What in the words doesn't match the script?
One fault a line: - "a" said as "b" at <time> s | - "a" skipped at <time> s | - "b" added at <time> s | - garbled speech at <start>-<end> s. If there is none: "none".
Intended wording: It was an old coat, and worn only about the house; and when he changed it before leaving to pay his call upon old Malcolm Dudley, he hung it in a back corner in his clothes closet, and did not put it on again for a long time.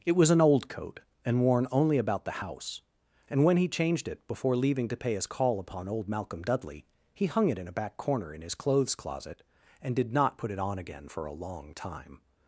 none